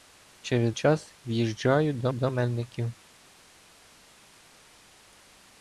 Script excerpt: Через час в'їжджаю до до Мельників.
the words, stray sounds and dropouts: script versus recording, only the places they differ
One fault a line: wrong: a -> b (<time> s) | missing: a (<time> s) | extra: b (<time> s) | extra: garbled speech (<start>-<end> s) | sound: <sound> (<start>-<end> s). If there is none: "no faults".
no faults